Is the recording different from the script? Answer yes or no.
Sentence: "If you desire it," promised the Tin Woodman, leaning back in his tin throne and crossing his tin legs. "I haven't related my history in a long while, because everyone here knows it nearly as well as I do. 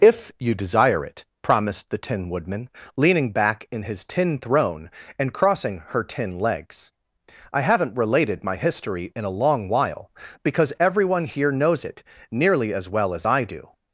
yes